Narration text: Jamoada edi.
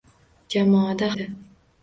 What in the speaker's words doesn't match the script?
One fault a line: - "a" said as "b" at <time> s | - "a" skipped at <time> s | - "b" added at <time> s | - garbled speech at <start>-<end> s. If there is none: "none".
none